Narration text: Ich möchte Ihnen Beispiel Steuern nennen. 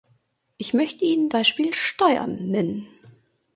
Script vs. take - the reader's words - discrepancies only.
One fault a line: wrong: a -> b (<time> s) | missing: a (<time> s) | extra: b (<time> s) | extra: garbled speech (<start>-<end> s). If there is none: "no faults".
no faults